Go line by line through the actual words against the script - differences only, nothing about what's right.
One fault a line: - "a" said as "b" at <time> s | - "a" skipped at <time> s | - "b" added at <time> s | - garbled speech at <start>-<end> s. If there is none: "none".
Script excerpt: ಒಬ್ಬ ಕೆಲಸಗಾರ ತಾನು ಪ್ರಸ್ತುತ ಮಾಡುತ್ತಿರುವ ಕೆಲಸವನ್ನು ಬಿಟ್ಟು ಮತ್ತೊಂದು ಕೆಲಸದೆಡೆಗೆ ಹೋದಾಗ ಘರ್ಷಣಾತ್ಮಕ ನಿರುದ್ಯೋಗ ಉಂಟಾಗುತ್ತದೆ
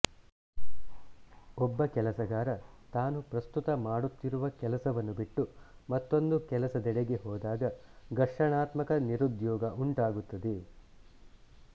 none